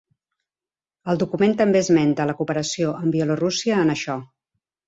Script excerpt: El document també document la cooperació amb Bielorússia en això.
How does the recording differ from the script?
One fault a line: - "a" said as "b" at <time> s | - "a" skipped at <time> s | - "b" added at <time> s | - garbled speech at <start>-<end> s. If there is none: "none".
- "document" said as "esmenta" at 1.9 s